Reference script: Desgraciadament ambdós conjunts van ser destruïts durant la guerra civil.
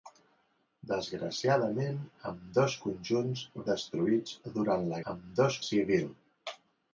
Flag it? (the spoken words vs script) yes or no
yes